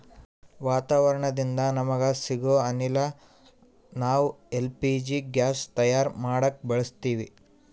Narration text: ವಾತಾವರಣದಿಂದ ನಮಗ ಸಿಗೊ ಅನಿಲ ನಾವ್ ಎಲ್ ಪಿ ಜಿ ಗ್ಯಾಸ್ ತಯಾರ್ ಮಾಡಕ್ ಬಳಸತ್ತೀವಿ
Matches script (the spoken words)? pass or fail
pass